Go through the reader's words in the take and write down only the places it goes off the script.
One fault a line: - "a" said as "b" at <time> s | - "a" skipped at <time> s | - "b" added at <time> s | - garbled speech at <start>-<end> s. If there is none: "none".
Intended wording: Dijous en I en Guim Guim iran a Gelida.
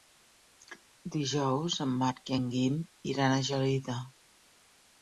- "Marc" added at 2.0 s
- "Guim" skipped at 2.8 s